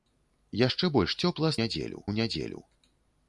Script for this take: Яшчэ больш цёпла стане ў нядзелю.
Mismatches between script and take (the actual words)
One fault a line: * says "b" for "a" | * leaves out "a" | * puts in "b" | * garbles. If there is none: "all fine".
* says "нядзелю" for "стане"